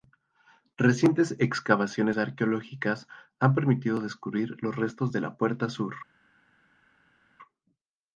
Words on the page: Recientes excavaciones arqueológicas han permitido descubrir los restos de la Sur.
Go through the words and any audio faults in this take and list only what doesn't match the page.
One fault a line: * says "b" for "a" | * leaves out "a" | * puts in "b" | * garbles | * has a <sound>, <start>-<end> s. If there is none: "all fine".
* puts in "Puerta"